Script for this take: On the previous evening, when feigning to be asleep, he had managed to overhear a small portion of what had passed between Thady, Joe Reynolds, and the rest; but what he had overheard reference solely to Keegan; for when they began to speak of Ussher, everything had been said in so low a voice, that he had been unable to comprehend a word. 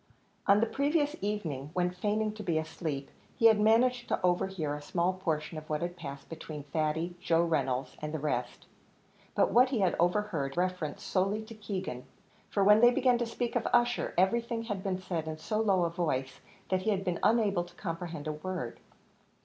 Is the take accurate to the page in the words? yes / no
yes